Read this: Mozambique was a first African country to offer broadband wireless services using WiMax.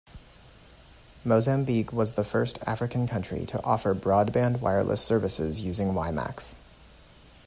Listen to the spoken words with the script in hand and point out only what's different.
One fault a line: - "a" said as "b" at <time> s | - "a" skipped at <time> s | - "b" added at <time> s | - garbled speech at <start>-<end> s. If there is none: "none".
- "a" said as "the" at 2.1 s